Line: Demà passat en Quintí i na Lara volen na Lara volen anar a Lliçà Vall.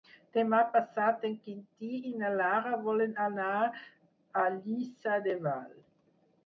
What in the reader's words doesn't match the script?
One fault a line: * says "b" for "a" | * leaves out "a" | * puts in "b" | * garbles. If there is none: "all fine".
* leaves out "na Lara volen"
* puts in "de"